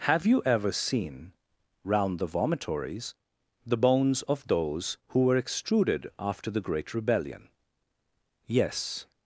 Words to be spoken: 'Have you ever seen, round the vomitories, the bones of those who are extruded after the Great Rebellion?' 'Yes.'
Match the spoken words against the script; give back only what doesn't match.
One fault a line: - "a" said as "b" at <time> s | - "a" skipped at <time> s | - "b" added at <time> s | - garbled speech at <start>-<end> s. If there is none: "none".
- "are" said as "were" at 5.2 s